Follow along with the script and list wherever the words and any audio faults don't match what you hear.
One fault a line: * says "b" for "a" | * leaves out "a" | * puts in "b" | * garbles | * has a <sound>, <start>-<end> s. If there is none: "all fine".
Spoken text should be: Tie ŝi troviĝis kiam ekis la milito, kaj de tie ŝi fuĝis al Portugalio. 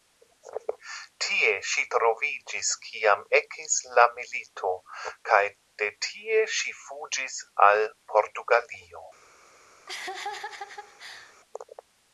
* has a laugh, 9.9-11.4 s